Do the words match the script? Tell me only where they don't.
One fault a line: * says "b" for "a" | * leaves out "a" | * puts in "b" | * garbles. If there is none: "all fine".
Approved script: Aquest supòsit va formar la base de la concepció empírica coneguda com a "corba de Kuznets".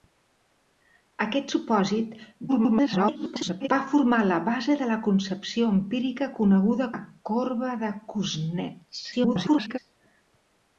* garbles
* leaves out "com"
* garbles